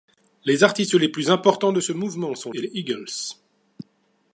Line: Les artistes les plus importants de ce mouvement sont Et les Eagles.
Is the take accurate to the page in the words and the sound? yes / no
yes